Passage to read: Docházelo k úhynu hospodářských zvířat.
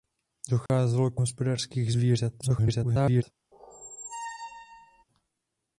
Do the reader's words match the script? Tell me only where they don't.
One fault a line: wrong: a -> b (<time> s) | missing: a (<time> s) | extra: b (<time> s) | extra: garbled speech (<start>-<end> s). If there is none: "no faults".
missing: úhynu (1.2 s)
extra: garbled speech (2.4-3.2 s)